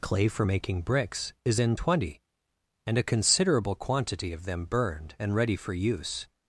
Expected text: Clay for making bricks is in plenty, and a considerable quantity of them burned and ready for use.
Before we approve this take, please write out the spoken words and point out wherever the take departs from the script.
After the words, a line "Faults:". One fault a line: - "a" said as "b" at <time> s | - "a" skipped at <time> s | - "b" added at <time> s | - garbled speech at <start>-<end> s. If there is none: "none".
Clay for making bricks is in twenty, and a considerable quantity of them burned and ready for use.
Faults:
- "plenty" said as "twenty" at 1.7 s